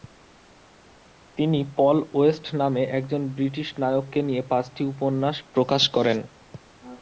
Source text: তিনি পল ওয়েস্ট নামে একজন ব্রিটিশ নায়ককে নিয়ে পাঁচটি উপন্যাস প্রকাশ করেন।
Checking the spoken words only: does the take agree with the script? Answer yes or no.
yes